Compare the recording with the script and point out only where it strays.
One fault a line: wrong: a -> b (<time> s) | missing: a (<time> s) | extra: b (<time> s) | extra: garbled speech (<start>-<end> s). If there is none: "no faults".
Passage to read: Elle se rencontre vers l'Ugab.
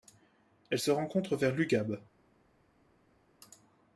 no faults